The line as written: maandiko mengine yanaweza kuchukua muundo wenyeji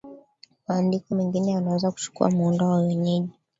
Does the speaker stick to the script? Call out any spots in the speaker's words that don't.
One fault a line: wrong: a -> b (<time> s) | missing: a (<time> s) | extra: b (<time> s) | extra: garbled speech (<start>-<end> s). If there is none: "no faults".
extra: wa (2.6 s)